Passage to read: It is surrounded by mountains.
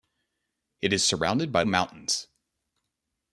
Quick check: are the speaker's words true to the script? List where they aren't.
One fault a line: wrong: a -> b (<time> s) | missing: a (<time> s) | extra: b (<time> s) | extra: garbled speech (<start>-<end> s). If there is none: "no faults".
no faults